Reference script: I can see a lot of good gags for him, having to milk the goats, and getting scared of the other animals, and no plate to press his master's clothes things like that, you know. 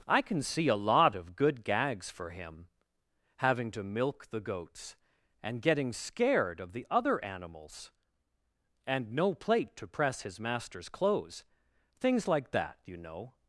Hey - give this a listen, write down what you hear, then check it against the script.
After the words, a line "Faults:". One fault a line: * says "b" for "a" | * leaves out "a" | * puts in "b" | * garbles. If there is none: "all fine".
I can see a lot of good gags for him, having to milk the goats, and getting scared of the other animals, and no plate to press his master's clothes things like that, you know.
Faults:
all fine